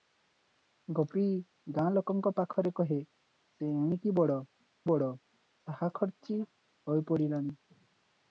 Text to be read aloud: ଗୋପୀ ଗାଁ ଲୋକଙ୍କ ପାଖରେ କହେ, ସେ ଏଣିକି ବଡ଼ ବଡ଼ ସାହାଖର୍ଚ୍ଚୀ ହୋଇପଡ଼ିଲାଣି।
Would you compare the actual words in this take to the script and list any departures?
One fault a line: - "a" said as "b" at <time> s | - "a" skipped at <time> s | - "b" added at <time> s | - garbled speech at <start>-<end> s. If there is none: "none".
none